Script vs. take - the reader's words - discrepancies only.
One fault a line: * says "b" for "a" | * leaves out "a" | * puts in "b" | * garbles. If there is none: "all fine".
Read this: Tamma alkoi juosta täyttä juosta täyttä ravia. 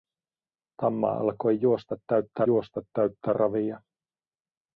all fine